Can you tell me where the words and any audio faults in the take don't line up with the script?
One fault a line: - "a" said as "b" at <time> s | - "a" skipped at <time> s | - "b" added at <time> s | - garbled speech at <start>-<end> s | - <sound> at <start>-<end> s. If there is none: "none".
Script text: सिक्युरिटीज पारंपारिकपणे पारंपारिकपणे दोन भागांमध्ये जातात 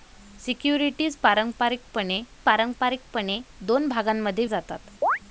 - chirp at 5.0-5.2 s